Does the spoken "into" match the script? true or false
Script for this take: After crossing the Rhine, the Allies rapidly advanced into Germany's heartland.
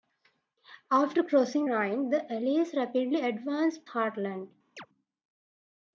false